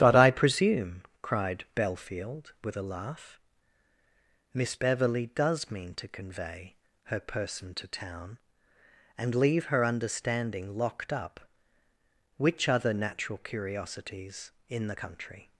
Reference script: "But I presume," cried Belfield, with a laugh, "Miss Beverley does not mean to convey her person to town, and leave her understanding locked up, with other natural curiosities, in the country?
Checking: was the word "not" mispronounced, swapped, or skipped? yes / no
yes